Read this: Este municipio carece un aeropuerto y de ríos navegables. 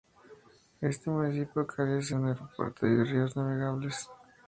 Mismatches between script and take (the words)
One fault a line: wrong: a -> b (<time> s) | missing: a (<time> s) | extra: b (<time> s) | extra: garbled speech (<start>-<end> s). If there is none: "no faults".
no faults